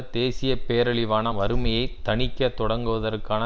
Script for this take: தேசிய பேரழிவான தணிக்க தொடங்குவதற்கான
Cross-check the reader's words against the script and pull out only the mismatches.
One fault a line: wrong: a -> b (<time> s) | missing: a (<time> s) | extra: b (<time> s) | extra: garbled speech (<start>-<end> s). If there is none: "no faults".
extra: வறுமையை (1.3 s)